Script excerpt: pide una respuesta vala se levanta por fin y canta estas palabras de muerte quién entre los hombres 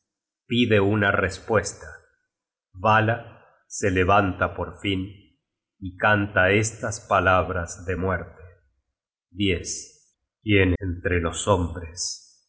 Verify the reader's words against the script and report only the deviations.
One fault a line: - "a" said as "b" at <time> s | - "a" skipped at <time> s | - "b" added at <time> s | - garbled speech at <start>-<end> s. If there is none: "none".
none